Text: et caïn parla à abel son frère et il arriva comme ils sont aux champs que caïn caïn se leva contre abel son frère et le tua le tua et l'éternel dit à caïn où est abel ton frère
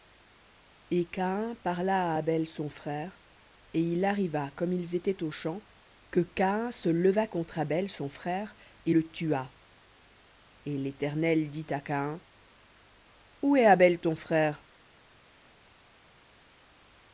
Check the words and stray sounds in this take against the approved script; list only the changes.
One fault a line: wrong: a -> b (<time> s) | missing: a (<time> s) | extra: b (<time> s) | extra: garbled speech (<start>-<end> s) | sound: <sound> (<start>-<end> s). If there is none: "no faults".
wrong: sont -> étaient (4.9 s)
missing: caïn (6.7 s)
missing: le tua (9.5 s)